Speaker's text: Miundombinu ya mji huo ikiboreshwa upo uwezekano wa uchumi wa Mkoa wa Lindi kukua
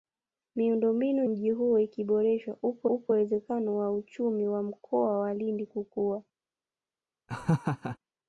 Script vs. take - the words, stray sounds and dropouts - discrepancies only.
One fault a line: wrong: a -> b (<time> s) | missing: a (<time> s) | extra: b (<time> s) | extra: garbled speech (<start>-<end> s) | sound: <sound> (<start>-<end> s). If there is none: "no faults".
missing: ya (1.2 s)
extra: upo (2.9 s)
sound: laugh (7.3-8.0 s)